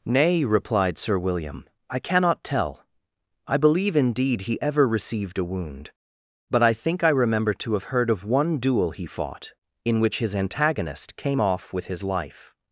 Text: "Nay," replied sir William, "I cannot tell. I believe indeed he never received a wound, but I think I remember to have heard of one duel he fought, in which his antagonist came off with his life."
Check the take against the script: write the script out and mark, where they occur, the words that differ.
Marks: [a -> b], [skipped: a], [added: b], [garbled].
"Nay," replied sir William, "I cannot tell. I believe indeed he [never -> ever] received a wound, but I think I remember to have heard of one duel he fought, in which his antagonist came off with his life."